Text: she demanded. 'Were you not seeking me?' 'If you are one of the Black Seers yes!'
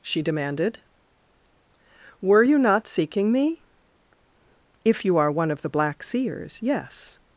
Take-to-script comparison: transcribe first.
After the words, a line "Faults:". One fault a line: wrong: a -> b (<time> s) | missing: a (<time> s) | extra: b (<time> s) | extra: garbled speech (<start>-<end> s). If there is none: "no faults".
she demanded. 'Were you not seeking me?' 'If you are one of the Black Seers yes!'
Faults:
no faults